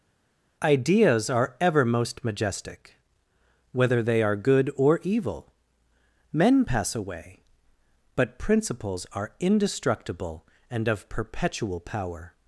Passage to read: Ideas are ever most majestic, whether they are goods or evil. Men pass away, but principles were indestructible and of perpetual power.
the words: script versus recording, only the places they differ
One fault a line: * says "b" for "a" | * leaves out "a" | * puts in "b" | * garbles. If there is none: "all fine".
* says "good" for "goods"
* says "are" for "were"